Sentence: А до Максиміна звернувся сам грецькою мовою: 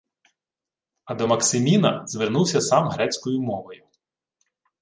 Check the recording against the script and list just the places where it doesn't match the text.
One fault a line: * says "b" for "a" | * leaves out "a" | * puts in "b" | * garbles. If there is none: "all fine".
all fine